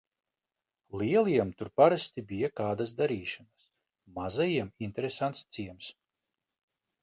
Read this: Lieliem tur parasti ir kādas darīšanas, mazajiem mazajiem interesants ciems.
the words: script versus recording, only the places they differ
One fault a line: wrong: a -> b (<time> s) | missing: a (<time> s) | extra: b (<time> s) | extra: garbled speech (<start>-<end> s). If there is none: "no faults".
wrong: ir -> bija (2.3 s)
missing: mazajiem (4.7 s)